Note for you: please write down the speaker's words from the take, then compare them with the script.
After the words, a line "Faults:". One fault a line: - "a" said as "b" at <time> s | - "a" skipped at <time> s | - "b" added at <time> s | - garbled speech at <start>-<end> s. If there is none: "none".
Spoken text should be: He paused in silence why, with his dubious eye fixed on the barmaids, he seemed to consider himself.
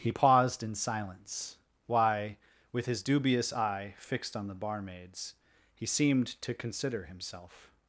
He paused in silence why, with his dubious eye fixed on the barmaids, he seemed to consider himself.
Faults:
none